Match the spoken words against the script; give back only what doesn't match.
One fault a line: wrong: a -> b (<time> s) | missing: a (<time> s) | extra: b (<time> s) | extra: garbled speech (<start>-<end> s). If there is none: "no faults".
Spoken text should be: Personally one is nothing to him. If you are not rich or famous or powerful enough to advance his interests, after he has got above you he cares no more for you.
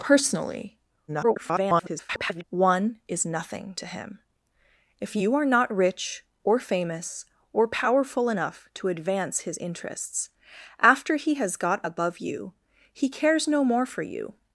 extra: garbled speech (1.1-2.4 s)